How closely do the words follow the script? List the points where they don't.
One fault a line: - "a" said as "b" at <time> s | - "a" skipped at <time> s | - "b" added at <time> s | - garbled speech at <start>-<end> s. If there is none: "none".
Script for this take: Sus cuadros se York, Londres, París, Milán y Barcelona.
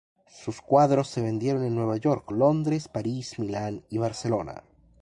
- "vendieron en Nueva" added at 1.2 s